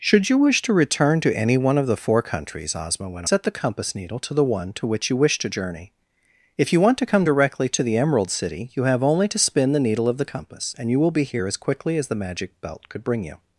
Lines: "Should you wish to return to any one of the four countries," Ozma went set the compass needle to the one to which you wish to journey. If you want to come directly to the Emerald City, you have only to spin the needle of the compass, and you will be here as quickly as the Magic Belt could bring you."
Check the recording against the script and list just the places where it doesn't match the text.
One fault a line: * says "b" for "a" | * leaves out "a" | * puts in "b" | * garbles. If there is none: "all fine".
all fine